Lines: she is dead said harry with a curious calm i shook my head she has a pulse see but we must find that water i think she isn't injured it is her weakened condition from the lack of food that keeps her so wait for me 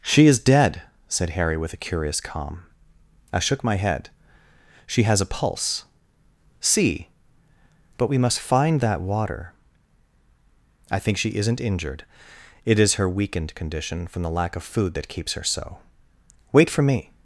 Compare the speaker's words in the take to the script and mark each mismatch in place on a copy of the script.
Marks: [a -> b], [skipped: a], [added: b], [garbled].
she is dead said harry with a curious calm i shook my head she has a pulse see but we must find that water i think she isn't injured it is her weakened condition from the lack of food that keeps her so wait for me